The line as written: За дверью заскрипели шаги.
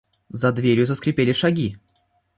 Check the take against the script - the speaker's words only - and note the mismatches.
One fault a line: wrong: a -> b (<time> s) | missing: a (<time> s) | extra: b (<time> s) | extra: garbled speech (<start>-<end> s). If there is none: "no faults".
no faults